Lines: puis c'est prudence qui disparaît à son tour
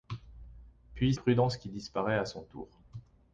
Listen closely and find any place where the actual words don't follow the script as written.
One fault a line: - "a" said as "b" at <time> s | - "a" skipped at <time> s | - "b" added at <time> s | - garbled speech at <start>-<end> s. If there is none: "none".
- "c'est" skipped at 1.1 s